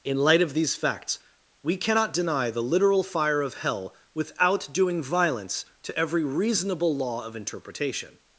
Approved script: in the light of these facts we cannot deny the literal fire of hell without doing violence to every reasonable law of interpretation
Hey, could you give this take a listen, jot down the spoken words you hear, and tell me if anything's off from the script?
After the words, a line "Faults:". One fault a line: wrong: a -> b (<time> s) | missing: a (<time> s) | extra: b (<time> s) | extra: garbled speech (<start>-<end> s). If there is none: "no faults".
in light of these facts we cannot deny the literal fire of hell without doing violence to every reasonable law of interpretation
Faults:
missing: the (0.2 s)